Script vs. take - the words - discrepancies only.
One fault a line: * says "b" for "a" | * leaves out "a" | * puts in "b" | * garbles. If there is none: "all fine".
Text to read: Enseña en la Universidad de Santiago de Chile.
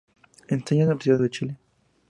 * leaves out "Santiago"